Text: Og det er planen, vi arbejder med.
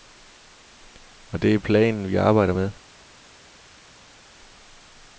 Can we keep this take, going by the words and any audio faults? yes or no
yes